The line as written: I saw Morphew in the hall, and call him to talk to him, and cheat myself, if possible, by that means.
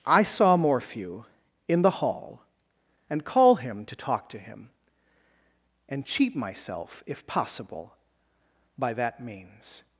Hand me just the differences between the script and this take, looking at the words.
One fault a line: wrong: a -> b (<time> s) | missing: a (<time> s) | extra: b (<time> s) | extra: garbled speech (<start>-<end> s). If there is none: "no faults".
no faults